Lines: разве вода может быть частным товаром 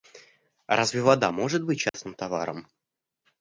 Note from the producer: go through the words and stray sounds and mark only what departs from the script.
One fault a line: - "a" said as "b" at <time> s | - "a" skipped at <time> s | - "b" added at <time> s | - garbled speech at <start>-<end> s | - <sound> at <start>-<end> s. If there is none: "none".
- dropout at 1.9-1.9 s